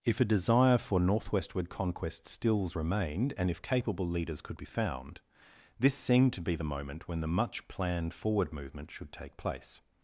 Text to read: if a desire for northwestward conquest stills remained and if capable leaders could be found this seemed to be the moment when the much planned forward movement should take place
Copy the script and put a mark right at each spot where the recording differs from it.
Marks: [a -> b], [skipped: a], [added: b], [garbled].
if a desire for northwestward conquest stills remained and if capable leaders could be found this seemed to be the moment when the much planned forward movement should take place